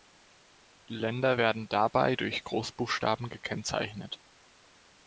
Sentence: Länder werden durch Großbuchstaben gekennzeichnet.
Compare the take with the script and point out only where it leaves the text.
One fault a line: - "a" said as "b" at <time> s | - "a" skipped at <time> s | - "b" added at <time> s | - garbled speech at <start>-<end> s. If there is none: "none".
- "dabei" added at 1.7 s